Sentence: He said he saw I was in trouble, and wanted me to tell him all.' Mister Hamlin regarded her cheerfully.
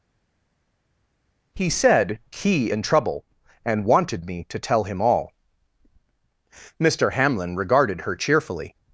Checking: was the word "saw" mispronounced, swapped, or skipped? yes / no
yes